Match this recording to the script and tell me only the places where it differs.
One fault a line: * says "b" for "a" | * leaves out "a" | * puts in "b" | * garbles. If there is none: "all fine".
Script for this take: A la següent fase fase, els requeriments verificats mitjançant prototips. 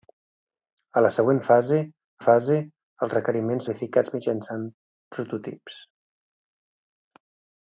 all fine